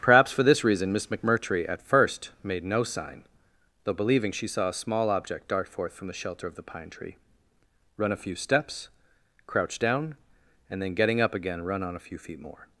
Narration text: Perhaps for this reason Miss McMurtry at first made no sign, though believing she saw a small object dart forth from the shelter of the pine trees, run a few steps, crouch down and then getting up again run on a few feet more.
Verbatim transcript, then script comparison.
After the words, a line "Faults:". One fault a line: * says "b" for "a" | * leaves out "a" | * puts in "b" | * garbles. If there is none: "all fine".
Perhaps for this reason Miss McMurtry at first made no sign, though believing she saw a small object dart forth from the shelter of the pine tree, run a few steps, crouch down and then getting up again run on a few feet more.
Faults:
* says "tree" for "trees"